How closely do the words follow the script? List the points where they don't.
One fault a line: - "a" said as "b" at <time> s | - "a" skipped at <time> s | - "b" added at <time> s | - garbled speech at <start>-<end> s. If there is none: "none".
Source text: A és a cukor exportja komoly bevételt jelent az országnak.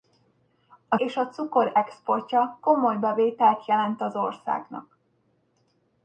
none